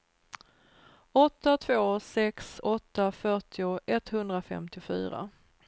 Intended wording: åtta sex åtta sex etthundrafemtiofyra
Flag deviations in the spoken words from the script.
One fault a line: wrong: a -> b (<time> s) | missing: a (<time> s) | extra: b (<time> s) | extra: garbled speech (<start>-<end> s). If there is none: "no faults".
extra: två (1.5 s)
wrong: sex -> fyrtio (3.1 s)